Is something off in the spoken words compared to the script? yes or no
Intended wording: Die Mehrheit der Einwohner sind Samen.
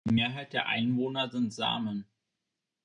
no